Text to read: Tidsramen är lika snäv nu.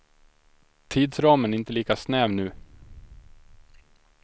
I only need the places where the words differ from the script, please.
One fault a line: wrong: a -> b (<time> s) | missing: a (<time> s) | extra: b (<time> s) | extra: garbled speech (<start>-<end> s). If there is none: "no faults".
extra: inte (1.6 s)